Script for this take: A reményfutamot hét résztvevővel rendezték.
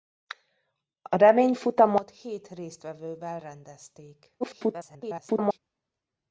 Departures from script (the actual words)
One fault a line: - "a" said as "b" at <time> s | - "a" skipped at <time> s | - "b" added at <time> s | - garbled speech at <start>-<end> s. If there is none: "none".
- garbled speech at 4.4-5.6 s